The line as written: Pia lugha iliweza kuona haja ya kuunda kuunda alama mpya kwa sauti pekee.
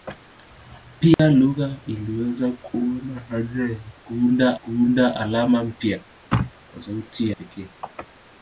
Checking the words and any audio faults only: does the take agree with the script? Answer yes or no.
no